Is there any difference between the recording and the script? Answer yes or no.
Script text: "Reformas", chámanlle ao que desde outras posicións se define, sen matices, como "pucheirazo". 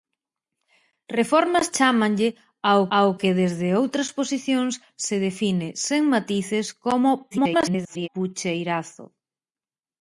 yes